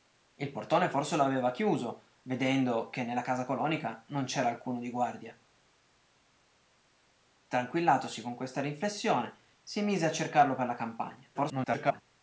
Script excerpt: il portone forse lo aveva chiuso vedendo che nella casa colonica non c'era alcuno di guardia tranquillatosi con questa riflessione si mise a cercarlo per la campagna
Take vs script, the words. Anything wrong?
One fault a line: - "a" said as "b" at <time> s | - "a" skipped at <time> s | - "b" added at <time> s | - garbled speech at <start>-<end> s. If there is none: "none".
- garbled speech at 11.3-12.0 s